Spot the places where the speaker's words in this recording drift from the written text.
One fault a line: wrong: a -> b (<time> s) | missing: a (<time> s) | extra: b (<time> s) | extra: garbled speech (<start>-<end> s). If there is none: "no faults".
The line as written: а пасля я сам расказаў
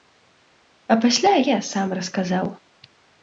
no faults